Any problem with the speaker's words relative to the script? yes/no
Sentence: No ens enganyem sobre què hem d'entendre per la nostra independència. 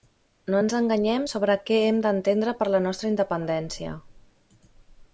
no